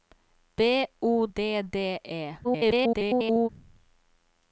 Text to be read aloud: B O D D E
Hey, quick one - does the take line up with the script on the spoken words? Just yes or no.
no